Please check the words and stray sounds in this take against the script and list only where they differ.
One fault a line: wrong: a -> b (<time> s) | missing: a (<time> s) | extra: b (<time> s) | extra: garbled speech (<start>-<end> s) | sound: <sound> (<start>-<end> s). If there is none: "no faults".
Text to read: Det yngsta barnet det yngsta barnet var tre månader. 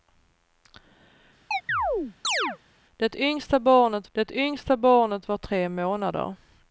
sound: chirp (1.5-2.6 s)